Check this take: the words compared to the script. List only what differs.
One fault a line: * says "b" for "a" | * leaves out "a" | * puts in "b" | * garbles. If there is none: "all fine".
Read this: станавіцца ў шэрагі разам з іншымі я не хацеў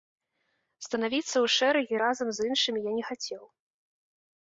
all fine